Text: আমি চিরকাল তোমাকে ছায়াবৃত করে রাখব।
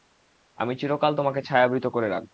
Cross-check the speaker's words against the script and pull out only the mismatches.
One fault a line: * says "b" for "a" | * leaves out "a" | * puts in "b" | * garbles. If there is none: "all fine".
all fine